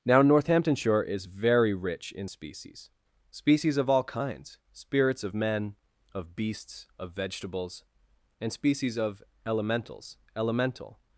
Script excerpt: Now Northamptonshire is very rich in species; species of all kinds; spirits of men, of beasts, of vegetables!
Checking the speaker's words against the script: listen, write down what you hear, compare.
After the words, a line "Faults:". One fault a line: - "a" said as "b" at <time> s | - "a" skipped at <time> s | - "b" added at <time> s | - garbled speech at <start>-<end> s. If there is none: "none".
Now Northamptonshire is very rich in species; species of all kinds; spirits of men, of beasts, of vegetables! and species of elementals elemental
Faults:
- "and species of elementals elemental" added at 8.4 s